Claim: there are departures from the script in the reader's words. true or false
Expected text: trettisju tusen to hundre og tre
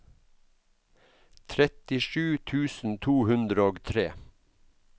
false